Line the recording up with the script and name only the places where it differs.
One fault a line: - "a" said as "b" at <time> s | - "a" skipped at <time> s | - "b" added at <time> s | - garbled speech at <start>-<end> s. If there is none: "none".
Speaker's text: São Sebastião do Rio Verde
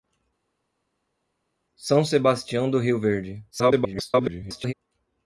- garbled speech at 3.5-4.7 s